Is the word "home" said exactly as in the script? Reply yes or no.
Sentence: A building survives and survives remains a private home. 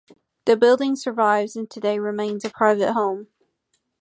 yes